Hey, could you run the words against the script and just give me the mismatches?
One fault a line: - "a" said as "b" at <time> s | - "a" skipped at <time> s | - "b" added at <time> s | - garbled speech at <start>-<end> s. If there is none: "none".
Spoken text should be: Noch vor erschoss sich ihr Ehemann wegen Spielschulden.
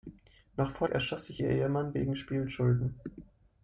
none